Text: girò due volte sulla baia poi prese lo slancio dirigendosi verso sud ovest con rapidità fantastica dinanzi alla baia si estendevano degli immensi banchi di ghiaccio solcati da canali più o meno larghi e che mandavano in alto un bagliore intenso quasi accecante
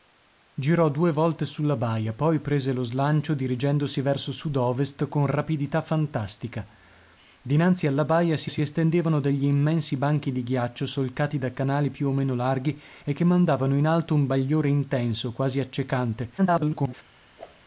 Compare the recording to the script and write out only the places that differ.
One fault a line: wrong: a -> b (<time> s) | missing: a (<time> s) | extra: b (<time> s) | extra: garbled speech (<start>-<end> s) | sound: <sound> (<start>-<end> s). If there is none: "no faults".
extra: si (8.5 s)
extra: garbled speech (16.4-16.9 s)
sound: whoosh (17.4-17.6 s)